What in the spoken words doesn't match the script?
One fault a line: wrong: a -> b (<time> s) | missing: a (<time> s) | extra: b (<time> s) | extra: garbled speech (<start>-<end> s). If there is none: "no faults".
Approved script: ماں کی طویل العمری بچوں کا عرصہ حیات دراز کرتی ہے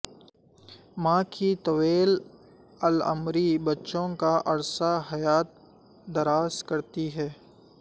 no faults